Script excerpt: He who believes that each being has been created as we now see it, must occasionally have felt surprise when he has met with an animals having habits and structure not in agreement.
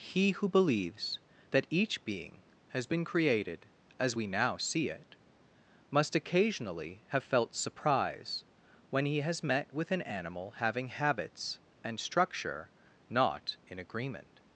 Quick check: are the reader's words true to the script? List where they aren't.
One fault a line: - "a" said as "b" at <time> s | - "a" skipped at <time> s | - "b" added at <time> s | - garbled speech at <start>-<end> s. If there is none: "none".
- "animals" said as "animal" at 10.0 s